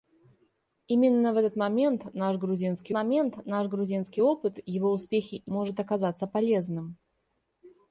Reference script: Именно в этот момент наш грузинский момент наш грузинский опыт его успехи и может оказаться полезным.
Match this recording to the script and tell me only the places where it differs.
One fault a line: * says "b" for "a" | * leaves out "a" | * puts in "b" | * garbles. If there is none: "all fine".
all fine